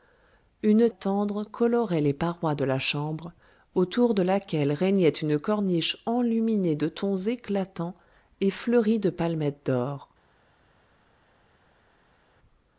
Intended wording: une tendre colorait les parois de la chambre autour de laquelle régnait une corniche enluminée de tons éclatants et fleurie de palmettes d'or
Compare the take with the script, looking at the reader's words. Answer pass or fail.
pass